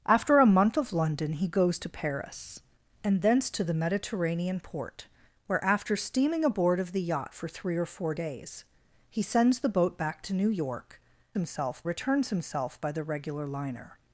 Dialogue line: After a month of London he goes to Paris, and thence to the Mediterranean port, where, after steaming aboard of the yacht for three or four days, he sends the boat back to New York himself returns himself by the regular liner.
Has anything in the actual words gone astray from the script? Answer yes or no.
no